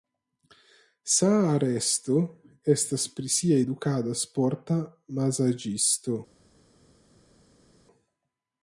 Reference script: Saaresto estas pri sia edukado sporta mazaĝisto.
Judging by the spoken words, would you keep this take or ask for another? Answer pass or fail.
pass